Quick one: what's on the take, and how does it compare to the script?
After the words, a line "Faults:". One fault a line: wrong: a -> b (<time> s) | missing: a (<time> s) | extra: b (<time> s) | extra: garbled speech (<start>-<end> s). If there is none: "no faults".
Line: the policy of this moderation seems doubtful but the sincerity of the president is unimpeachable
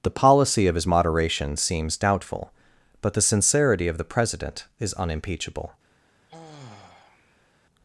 the policy of his moderation seems doubtful but the sincerity of the president is unimpeachable
Faults:
wrong: this -> his (0.7 s)